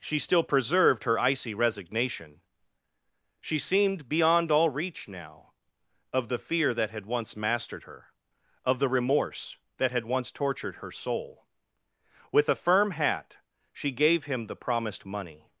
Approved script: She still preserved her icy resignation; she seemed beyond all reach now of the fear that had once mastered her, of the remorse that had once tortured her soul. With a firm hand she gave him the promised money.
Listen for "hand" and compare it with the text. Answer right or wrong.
wrong